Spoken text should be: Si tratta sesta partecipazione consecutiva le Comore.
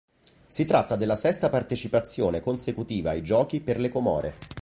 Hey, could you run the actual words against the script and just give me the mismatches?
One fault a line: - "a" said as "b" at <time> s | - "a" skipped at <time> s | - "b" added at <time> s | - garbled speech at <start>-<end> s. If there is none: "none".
- "della" added at 0.9 s
- "ai Giochi per" added at 3.1 s